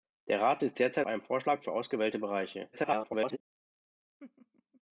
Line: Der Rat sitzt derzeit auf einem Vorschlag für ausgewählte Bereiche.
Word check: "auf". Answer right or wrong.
wrong